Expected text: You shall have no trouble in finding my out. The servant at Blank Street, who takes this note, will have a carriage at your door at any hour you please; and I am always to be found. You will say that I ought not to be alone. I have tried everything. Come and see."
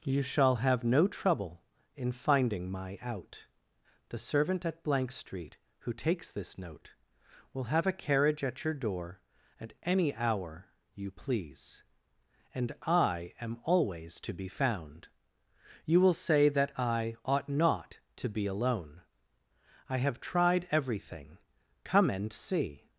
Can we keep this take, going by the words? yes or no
yes